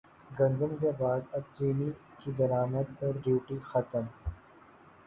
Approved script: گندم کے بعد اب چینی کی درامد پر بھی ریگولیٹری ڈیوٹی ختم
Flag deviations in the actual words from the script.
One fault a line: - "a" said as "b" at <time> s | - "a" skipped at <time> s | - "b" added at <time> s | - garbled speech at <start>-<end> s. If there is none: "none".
- "بھی ریگولیٹری" skipped at 3.2 s